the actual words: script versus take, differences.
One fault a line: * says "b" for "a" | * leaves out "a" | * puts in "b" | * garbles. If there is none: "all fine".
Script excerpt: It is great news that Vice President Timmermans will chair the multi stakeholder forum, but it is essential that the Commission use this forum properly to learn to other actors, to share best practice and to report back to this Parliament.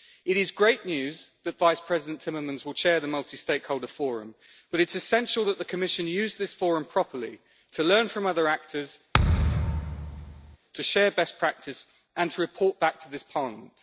* says "from" for "to"